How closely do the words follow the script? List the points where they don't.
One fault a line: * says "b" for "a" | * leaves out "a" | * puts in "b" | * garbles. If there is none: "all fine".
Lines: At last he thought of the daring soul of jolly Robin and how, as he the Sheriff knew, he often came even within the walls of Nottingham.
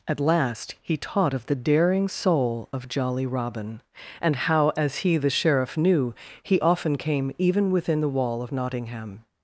* says "taught" for "thought"
* says "wall" for "walls"